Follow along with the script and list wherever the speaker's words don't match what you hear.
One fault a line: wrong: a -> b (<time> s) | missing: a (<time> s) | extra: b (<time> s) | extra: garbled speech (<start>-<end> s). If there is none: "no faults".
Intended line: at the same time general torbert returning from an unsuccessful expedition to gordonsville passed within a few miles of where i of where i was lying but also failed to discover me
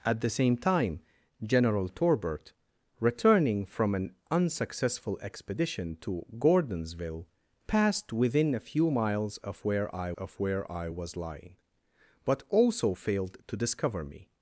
no faults